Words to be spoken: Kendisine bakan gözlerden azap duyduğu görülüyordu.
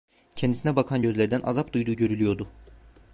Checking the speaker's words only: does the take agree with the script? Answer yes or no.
yes